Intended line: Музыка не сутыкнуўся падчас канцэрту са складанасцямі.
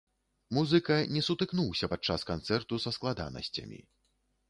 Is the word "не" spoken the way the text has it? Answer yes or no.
yes